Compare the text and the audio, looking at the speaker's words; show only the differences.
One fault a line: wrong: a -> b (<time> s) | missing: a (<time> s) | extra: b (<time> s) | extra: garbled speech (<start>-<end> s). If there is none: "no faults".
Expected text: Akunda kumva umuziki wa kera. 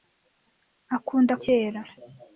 missing: kumva umuziki wa (1.3 s)